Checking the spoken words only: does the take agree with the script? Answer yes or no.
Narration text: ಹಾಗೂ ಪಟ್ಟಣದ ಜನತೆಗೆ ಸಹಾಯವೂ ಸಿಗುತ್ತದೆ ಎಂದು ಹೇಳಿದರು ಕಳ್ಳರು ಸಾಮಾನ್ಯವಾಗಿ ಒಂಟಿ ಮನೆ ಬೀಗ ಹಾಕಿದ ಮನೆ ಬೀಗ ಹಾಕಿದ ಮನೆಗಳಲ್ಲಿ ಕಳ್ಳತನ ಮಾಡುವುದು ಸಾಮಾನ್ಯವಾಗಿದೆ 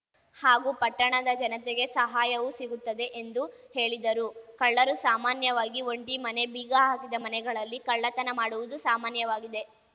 no